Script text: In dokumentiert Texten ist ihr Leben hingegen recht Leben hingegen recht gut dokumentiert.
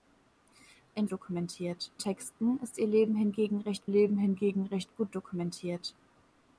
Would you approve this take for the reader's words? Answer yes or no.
yes